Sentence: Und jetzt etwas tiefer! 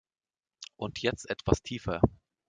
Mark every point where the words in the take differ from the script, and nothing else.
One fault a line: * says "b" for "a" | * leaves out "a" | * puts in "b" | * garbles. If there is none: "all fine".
all fine